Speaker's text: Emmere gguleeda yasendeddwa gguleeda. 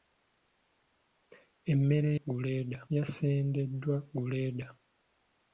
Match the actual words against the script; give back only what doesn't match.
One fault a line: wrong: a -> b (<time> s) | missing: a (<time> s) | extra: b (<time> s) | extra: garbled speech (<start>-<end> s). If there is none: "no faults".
no faults